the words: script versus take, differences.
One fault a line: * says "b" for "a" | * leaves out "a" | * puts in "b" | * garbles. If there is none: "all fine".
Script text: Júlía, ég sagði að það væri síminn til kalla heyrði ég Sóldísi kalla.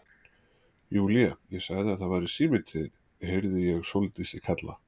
* says "þín" for "kalla"